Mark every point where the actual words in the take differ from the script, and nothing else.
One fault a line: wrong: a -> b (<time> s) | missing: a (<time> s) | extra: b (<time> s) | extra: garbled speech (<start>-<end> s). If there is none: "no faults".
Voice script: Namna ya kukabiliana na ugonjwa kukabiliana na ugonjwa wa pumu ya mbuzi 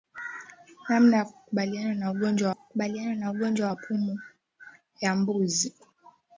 no faults